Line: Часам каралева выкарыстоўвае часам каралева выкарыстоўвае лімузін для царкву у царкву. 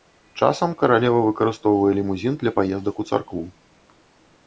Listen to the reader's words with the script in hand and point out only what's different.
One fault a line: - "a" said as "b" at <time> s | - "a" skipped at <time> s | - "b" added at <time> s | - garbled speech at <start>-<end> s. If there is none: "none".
- "часам каралева выкарыстоўвае" skipped at 1.9 s
- "царкву" said as "паездак" at 2.6 s